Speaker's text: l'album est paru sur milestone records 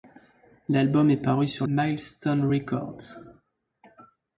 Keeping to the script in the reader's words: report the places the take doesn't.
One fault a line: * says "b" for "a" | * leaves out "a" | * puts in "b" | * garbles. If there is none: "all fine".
all fine